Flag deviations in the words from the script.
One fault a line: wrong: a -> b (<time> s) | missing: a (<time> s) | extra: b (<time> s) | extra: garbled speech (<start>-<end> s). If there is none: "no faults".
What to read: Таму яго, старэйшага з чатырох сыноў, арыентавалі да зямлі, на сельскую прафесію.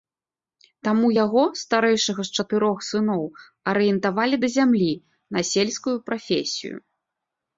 no faults